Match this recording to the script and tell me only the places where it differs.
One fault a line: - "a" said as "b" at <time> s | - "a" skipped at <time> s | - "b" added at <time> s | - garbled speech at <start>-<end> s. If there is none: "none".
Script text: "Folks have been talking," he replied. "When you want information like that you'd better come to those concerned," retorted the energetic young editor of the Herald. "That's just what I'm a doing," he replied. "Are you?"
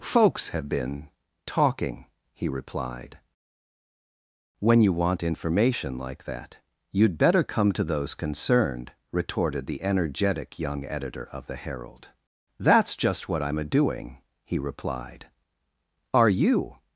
none